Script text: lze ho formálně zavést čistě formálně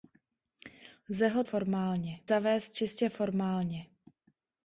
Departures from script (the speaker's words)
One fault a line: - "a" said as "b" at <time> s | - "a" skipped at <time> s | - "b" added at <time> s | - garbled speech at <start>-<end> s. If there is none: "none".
none